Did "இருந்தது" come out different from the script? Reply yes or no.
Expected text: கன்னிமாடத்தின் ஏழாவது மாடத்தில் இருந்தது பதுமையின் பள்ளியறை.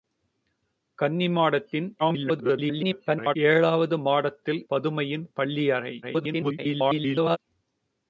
yes